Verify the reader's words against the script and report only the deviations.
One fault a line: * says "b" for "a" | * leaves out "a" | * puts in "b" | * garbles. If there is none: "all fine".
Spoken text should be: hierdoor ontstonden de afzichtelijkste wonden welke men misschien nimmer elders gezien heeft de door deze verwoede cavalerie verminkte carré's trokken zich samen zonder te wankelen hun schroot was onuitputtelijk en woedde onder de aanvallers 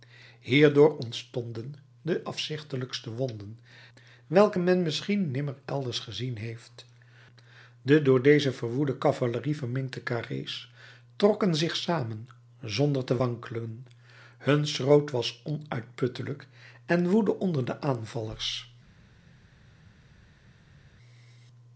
all fine